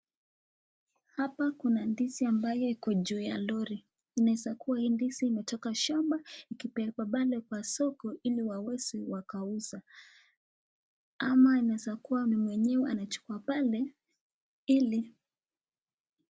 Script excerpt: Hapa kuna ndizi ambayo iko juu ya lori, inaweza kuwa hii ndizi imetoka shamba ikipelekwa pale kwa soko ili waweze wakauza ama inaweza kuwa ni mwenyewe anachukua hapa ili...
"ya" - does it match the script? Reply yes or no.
yes